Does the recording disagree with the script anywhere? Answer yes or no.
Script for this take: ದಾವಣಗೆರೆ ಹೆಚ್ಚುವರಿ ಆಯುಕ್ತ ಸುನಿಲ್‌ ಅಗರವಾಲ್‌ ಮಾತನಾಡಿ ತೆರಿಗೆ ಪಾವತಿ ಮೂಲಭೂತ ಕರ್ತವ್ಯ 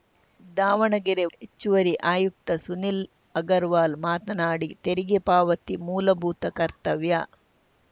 no